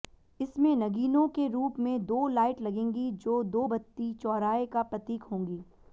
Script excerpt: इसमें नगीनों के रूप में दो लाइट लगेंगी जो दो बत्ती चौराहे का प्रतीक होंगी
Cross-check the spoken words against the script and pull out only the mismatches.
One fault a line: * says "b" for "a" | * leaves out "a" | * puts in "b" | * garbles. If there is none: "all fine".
all fine